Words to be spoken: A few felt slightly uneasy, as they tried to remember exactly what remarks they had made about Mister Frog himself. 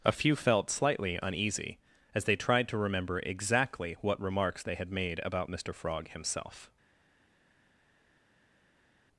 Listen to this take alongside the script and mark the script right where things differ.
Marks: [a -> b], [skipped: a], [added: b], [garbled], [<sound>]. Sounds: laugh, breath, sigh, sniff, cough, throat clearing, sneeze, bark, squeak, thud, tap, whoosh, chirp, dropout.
A few felt slightly uneasy, as they tried to remember exactly what remarks they had made about Mister Frog himself.